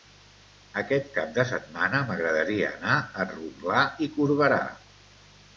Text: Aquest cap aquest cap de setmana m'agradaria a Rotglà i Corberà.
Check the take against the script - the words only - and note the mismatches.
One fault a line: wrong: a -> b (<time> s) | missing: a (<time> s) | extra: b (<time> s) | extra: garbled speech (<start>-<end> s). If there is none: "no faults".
missing: aquest cap (1.4 s)
extra: anar (2.8 s)